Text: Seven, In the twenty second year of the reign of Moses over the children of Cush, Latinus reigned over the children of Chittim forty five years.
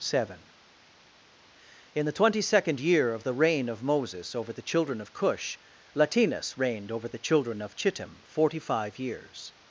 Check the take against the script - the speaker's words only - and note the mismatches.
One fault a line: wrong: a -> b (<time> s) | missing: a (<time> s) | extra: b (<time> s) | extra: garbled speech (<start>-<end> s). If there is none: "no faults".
no faults